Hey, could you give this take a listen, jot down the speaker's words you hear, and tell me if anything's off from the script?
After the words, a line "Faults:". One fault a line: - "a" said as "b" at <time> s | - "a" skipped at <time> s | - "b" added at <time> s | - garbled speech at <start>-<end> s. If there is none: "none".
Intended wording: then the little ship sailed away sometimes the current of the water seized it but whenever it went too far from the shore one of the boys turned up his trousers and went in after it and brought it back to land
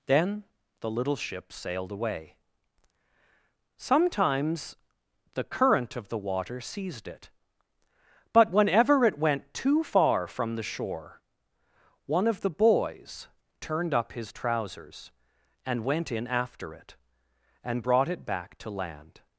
then the little ship sailed away sometimes the current of the water seized it but whenever it went too far from the shore one of the boys turned up his trousers and went in after it and brought it back to land
Faults:
none